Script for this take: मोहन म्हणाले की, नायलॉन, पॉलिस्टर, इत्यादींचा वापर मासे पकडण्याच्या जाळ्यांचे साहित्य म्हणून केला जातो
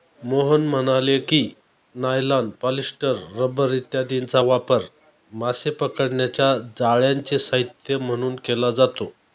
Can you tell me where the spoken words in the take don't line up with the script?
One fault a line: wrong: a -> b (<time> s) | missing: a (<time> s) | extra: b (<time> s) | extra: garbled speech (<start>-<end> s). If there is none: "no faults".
extra: रबर (3.4 s)